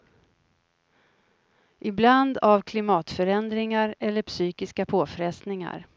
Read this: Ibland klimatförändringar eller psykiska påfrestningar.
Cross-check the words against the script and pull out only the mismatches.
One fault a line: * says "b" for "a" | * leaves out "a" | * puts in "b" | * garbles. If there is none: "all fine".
* puts in "av"